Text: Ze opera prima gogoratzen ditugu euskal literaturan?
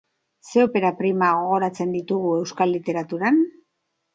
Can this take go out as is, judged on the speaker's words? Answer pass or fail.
pass